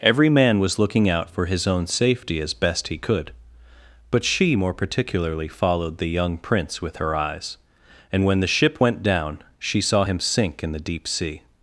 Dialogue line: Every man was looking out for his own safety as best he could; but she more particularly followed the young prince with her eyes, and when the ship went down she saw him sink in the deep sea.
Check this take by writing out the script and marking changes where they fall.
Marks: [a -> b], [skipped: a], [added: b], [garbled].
Every man was looking out for his own safety as best he could; but she more particularly followed the young prince with her eyes, and when the ship went down she saw him sink in the deep sea.